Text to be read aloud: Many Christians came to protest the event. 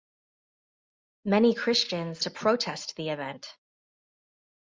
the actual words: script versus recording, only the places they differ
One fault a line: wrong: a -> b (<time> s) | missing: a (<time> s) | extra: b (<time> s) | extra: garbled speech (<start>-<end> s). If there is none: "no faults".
missing: came (2.2 s)